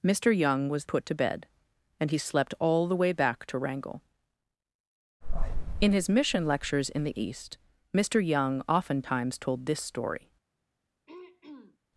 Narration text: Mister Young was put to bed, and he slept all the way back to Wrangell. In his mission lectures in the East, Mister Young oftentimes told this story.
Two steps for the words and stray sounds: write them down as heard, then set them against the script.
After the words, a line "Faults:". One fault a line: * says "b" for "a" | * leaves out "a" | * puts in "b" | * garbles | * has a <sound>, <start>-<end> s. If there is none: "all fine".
Mister Young was put to bed, and he slept all the way back to Wrangell. In his mission lectures in the East, Mister Young oftentimes told this story.
Faults:
* has a throat clearing, 11.1-11.8 s